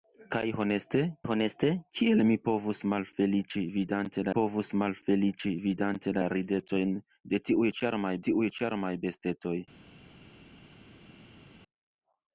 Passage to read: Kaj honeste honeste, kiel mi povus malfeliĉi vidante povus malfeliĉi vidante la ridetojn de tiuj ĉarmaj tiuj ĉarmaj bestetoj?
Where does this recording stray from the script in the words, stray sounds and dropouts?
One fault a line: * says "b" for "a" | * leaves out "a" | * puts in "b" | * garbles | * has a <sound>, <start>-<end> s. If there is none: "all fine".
all fine